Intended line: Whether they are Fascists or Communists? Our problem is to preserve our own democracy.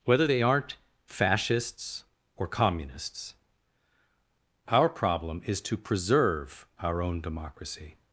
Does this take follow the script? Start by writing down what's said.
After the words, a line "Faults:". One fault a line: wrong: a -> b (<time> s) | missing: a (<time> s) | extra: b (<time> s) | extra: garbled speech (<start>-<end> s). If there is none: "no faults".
Whether they aren't Fascists or Communists? Our problem is to preserve our own democracy.
Faults:
wrong: are -> aren't (0.4 s)